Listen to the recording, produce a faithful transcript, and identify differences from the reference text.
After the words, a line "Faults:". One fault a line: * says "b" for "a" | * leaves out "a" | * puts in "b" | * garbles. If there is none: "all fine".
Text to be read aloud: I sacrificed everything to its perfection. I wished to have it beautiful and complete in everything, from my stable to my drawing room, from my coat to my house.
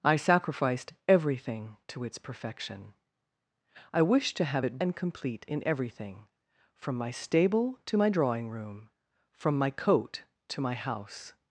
I sacrificed everything to its perfection. I wished to have it and complete in everything, from my stable to my drawing room, from my coat to my house.
Faults:
* leaves out "beautiful"